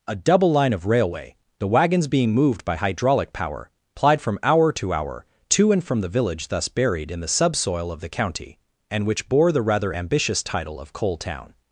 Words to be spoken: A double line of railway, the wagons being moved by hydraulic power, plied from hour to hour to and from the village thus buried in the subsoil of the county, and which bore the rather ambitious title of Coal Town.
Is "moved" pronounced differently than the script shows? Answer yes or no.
no